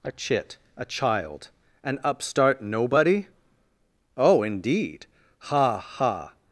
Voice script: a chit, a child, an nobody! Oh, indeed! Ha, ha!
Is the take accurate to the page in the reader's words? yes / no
no